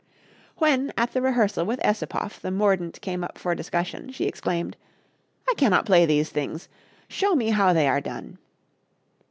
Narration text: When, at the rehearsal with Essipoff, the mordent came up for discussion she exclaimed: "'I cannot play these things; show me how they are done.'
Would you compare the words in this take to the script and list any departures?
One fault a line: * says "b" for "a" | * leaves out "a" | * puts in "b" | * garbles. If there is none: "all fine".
all fine